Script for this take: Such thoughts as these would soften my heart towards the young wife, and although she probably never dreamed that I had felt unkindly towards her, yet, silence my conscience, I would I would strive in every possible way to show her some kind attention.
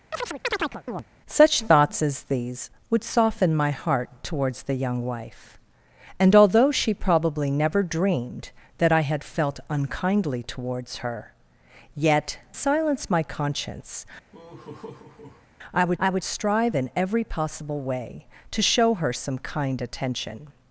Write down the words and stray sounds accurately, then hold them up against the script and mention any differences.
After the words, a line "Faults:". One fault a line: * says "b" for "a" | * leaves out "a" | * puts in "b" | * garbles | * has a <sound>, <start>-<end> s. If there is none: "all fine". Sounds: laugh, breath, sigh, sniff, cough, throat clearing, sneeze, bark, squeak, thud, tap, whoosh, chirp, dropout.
Such thoughts as these would soften my heart towards the young wife, and although she probably never dreamed that I had felt unkindly towards her, yet, silence my conscience, I would I would strive in every possible way to show her some kind attention.
Faults:
* has a chirp, 0.1-1.0 s
* has a laugh, 14.3-15.5 s